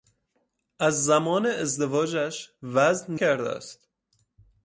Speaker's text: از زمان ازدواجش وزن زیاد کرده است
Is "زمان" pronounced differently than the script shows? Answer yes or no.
no